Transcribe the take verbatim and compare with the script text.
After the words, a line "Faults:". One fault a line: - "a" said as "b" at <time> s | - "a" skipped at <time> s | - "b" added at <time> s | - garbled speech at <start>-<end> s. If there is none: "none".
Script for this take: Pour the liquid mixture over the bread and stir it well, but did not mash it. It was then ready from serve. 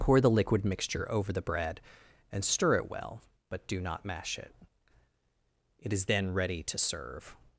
Pour the liquid mixture over the bread and stir it well, but do not mash it. It is then ready to serve.
Faults:
- "did" said as "do" at 3.7 s
- "was" said as "is" at 5.9 s
- "from" said as "to" at 6.6 s